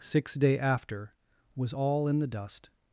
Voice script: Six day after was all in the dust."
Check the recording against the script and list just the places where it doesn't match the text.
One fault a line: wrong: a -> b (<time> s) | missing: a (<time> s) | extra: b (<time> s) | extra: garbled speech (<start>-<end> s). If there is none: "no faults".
no faults